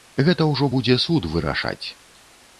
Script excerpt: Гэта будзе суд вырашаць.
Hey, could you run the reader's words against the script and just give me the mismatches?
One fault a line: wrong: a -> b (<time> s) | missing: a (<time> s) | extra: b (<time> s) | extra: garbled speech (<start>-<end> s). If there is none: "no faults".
extra: ўжо (0.5 s)